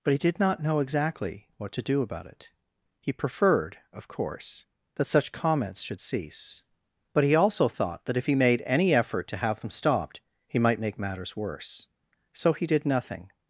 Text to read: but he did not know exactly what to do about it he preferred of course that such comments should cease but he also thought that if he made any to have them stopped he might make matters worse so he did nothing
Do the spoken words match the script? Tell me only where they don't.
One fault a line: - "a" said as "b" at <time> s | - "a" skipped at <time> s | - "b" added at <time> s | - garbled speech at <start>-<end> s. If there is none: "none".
- "effort" added at 8.9 s